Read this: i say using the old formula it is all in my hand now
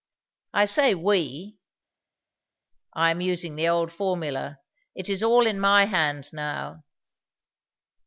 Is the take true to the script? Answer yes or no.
no